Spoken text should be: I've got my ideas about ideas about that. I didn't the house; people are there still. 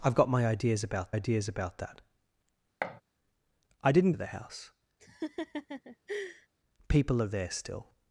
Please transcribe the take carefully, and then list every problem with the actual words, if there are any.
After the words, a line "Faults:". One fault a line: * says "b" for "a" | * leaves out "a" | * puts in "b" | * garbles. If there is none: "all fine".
I've got my ideas about ideas about that. I didn't the house; people are there still.
Faults:
all fine